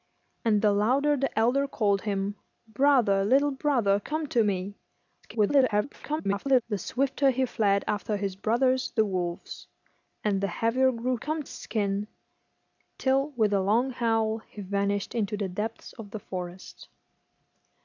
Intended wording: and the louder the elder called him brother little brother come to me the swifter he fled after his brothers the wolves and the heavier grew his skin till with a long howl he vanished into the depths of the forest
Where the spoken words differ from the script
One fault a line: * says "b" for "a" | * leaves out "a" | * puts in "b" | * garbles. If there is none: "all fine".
* garbles
* says "come" for "his"